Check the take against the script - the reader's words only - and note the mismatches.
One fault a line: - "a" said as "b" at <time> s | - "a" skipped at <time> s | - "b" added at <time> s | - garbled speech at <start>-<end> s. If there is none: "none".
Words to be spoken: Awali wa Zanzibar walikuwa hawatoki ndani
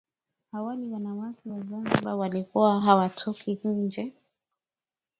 - "wanawake" added at 0.9 s
- "ndani" said as "nje" at 3.6 s